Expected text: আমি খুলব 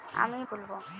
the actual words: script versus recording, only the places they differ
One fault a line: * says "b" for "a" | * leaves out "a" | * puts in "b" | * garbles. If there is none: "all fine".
all fine